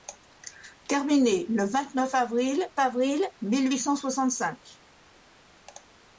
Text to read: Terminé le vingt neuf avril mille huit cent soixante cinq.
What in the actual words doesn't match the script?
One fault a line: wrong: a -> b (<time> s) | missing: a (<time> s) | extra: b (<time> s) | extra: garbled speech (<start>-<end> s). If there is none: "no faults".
extra: avril (2.8 s)